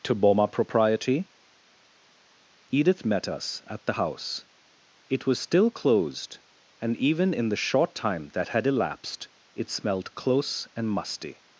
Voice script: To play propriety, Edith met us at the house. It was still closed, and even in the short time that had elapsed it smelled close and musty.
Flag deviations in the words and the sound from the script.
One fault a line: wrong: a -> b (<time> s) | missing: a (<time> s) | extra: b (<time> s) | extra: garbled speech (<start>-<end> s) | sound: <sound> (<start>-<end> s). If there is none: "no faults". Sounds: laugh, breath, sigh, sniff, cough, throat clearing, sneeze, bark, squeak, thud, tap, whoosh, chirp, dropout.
wrong: play -> boma (0.1 s)